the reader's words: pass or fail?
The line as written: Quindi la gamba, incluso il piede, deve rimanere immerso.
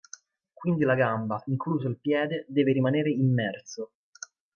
pass